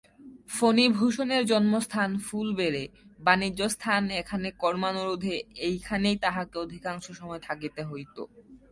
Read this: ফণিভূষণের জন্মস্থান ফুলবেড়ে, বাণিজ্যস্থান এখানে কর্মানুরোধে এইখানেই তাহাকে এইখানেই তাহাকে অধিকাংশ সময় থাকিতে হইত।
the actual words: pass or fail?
fail